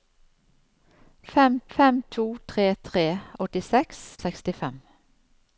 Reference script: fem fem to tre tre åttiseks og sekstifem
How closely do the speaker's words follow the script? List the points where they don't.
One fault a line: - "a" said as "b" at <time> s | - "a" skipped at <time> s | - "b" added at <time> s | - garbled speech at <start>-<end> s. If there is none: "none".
none